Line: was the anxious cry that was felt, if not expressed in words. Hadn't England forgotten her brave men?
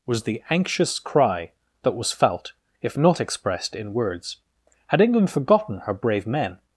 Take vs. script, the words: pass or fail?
fail